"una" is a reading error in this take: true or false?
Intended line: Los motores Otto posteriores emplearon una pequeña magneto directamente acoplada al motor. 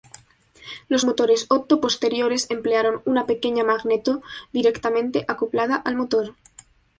false